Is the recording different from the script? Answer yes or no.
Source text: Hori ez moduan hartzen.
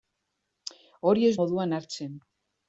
no